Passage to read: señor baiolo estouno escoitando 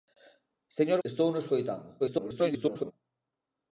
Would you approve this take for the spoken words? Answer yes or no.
no